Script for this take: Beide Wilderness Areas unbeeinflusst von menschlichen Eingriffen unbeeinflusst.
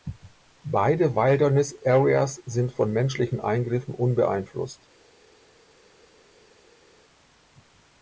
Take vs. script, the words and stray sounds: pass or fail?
fail